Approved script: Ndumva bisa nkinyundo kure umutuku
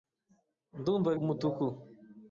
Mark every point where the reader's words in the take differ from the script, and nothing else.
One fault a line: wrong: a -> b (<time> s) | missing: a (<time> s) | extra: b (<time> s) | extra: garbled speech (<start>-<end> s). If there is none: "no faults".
missing: bisa nkinyundo kure (1.1 s)